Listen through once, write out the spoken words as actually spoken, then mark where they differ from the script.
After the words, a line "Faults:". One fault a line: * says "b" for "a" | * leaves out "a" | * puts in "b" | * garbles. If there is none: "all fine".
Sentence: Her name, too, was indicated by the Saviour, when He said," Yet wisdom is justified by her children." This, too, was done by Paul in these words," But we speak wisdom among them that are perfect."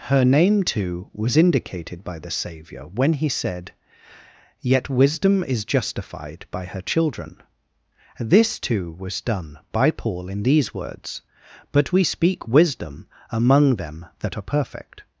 Her name, too, was indicated by the Saviour, when He said," Yet wisdom is justified by her children." This, too, was done by Paul in these words," But we speak wisdom among them that are perfect."
Faults:
all fine